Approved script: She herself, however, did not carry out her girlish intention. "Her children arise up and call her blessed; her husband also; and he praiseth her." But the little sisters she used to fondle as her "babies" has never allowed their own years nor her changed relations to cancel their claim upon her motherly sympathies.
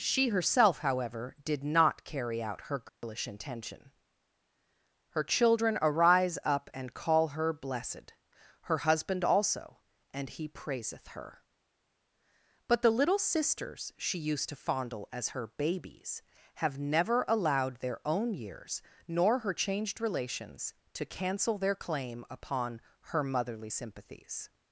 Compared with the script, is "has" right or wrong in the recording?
wrong